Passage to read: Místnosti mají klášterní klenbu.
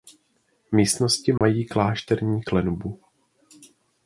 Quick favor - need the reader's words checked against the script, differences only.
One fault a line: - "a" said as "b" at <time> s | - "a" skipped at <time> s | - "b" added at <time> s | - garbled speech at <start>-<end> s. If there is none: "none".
none